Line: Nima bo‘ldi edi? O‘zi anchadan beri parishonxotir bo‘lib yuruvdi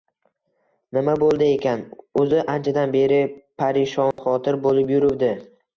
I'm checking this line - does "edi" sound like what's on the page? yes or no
no